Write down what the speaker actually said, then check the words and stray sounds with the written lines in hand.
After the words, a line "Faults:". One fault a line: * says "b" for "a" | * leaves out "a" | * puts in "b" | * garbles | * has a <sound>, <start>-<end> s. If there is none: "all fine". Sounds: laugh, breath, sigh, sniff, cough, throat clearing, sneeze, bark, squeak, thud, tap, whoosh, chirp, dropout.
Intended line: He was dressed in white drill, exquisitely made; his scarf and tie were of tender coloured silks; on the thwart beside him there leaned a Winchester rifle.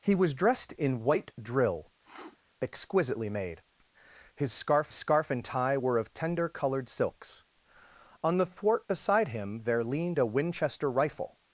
He was dressed in white drill, exquisitely made; his scarf scarf and tie were of tender coloured silks; on the thwart beside him there leaned a Winchester rifle.
Faults:
* has a sniff, 2.0-2.4 s
* puts in "scarf"